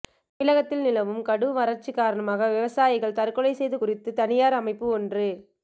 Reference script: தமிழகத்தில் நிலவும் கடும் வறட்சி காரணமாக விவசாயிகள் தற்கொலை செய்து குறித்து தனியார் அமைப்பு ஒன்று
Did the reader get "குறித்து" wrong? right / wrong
right